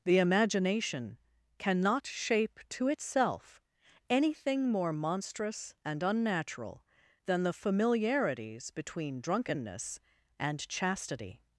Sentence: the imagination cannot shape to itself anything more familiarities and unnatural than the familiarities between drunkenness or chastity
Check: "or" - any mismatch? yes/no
yes